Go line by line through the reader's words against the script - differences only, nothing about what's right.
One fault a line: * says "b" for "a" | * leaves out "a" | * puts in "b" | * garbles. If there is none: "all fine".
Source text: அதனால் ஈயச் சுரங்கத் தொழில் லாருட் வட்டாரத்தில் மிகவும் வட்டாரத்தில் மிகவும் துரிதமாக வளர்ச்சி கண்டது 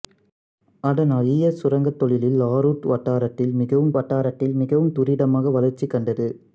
all fine